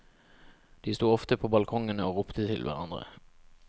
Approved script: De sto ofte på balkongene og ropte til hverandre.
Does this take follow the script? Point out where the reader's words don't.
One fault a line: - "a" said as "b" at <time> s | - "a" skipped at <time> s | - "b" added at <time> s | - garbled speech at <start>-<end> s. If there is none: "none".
none